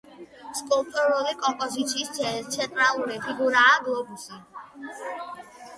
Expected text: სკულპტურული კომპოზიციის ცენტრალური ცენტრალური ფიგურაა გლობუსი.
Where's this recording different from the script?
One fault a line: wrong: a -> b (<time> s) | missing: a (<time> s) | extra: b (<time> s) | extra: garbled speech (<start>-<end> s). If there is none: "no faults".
missing: ცენტრალური (3.2 s)